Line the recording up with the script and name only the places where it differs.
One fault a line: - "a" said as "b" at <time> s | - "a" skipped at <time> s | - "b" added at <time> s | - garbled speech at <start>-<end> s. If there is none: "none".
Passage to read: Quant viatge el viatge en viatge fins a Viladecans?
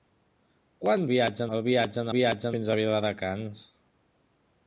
none